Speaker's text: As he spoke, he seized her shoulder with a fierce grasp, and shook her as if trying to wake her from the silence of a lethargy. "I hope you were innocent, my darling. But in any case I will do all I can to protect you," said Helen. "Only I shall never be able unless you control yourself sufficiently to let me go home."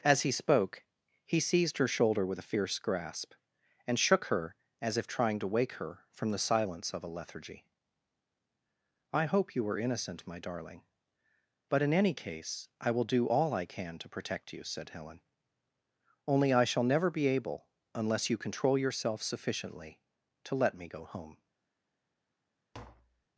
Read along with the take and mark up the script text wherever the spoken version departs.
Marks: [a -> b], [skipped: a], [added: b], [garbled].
As he spoke, he seized her shoulder with a fierce grasp, and shook her as if trying to wake her from the silence of a lethargy. "I hope you were innocent, my darling. But in any case I will do all I can to protect you," said Helen. "Only I shall never be able unless you control yourself sufficiently to let me go home."